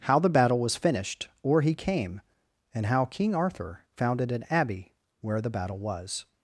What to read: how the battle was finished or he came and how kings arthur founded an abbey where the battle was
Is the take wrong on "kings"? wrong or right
wrong